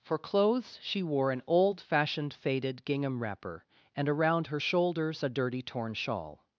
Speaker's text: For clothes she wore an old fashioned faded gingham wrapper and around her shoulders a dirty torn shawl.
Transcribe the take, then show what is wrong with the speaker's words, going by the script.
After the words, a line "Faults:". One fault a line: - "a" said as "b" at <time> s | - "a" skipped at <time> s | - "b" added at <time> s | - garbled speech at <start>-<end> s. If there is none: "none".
For clothes she wore an old fashioned faded gingham wrapper and around her shoulders a dirty torn shawl.
Faults:
none